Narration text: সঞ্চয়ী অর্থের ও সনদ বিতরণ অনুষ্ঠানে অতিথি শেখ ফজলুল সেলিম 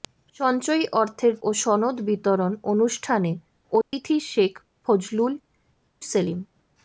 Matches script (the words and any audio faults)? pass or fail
fail